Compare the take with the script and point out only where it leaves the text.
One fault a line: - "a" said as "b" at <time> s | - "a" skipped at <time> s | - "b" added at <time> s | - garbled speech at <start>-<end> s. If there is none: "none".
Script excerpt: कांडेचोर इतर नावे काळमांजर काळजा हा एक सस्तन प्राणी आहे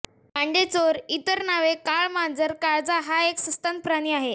none